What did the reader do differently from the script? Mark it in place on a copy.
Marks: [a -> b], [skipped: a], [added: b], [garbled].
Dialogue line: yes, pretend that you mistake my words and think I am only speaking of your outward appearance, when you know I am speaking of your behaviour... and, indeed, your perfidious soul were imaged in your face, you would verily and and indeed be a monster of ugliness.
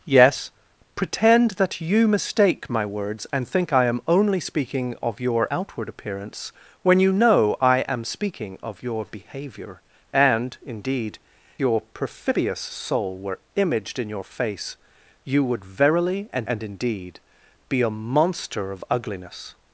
yes, pretend that you mistake my words and think I am only speaking of your outward appearance, when you know I am speaking of your behaviour... and, indeed, your perfidious soul were imaged in your face, you would verily and and indeed be a monster of ugliness.